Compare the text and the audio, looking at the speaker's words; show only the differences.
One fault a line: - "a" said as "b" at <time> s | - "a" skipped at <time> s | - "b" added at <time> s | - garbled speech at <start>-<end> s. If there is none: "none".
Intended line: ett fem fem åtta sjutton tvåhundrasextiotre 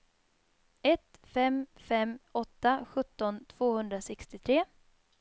none